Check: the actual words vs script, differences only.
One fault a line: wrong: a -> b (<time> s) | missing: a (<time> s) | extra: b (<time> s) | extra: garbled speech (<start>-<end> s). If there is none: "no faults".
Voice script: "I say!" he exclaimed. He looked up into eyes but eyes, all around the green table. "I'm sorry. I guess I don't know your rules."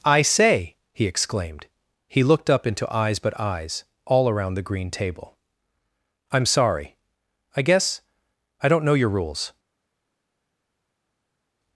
no faults